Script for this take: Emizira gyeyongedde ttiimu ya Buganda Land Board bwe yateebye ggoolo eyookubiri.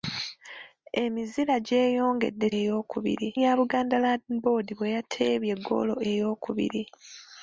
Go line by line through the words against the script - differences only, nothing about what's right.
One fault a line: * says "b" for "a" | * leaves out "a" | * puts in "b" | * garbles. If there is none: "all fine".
* says "eyookubiri" for "ttiimu"